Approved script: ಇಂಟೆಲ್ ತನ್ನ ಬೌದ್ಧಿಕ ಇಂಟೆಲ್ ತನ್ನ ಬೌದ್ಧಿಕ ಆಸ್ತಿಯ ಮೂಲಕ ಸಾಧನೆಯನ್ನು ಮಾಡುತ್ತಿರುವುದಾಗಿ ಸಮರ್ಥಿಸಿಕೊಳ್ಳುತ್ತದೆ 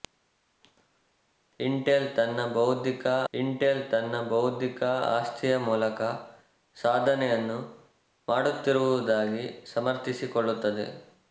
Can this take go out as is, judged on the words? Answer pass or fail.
pass